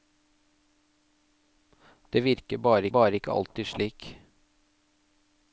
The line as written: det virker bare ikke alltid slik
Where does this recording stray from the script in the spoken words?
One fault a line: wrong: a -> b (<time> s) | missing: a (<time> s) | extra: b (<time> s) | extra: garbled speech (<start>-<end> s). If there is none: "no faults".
extra: bare (2.9 s)